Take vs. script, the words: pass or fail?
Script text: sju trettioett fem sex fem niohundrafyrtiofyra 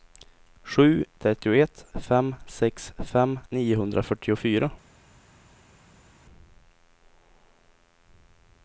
pass